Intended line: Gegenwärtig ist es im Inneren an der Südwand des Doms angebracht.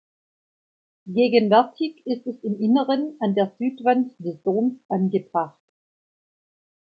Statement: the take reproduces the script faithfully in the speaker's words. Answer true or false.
true